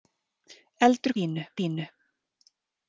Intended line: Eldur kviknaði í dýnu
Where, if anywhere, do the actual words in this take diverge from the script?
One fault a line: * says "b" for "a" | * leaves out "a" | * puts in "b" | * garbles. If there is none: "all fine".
* says "dýnu" for "kviknaði"